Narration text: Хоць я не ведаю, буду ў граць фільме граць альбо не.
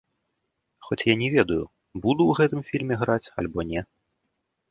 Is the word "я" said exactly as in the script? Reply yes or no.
yes